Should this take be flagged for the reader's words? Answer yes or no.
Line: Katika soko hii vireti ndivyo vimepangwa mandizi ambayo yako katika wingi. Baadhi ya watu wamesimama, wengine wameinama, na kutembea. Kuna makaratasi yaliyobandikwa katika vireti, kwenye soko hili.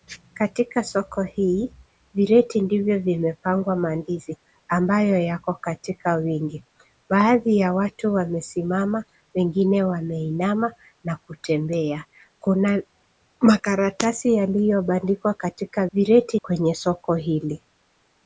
no